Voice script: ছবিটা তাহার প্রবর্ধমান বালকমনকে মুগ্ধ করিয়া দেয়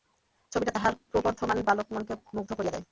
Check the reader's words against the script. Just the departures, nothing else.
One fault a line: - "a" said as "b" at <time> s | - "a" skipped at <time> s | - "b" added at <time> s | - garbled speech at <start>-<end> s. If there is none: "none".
none